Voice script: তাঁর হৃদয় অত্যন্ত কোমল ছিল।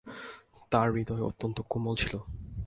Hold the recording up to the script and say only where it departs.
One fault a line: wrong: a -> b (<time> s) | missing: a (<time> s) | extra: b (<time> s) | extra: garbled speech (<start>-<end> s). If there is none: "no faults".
no faults